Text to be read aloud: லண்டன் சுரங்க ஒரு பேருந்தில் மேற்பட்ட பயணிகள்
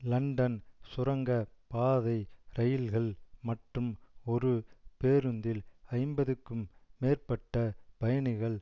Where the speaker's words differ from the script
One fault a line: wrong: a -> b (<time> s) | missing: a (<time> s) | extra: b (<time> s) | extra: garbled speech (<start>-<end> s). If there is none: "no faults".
extra: பாதை இரயில்கள் மற்றும் (1.7 s)
extra: ஐம்பதுக்கும் (5.9 s)